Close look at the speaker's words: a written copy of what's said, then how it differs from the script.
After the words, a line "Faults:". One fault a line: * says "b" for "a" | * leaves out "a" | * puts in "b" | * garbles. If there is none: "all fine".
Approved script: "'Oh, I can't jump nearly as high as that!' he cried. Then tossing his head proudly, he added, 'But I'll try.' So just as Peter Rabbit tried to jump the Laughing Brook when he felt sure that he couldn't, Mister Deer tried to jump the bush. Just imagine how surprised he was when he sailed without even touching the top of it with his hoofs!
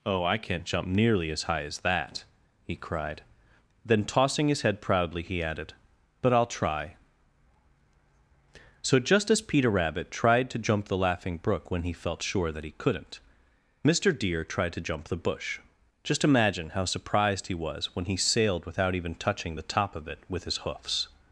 "'Oh, I can't jump nearly as high as that!' he cried. Then tossing his head proudly, he added, 'But I'll try.' So just as Peter Rabbit tried to jump the Laughing Brook when he felt sure that he couldn't, Mister Deer tried to jump the bush. Just imagine how surprised he was when he sailed without even touching the top of it with his hoofs!
Faults:
all fine